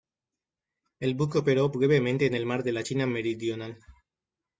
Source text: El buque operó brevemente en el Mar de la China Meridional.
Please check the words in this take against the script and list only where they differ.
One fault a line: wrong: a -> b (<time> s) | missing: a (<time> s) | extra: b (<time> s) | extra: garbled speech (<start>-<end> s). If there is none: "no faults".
no faults